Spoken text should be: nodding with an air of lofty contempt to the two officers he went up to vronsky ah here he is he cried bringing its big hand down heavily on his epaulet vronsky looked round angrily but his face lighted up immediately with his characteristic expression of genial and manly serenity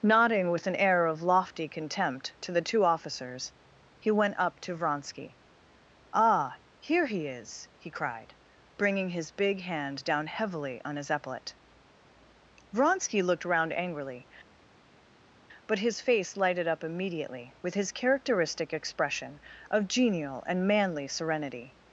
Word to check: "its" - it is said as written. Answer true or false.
false